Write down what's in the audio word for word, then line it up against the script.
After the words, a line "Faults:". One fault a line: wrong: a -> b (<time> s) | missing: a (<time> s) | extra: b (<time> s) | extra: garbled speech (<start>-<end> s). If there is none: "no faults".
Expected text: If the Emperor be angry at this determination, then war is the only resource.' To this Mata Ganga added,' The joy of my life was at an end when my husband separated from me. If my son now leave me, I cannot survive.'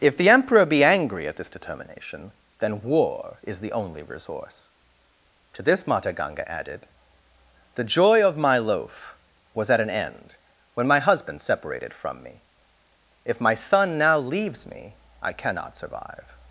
If the Emperor be angry at this determination, then war is the only resource.' To this Mata Ganga added,' The joy of my loaf was at an end when my husband separated from me. If my son now leaves me, I cannot survive.'
Faults:
wrong: life -> loaf (8.6 s)
wrong: leave -> leaves (14.2 s)